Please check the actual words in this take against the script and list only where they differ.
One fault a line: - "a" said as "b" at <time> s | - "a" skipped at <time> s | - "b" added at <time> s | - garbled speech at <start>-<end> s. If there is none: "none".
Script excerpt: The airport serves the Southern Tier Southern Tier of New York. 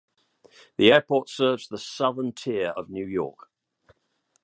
- "Southern Tier" skipped at 2.7 s